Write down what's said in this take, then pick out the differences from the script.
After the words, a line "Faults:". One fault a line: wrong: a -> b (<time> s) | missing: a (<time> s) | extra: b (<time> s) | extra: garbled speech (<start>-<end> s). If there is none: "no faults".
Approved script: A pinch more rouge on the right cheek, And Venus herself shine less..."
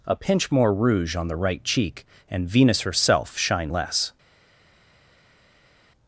A pinch more rouge on the right cheek, And Venus herself shine less..."
Faults:
no faults